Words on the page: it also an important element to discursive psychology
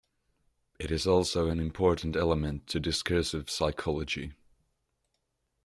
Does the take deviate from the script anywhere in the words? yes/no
yes